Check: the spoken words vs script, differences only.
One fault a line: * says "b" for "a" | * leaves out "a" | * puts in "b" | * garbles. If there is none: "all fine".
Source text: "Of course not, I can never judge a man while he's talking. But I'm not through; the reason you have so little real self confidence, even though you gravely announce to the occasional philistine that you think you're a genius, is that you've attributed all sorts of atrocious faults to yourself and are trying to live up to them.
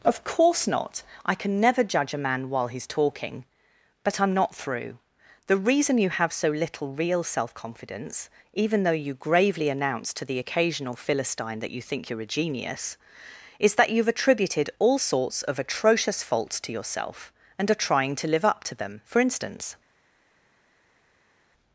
* puts in "For instance"